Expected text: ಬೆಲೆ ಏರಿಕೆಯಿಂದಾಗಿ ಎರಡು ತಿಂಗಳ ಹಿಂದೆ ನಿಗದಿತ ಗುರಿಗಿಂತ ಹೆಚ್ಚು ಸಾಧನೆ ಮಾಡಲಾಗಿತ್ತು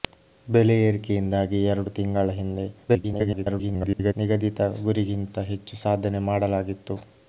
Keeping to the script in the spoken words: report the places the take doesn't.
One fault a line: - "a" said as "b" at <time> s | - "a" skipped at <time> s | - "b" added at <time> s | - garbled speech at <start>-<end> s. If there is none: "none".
- garbled speech at 2.9-4.1 s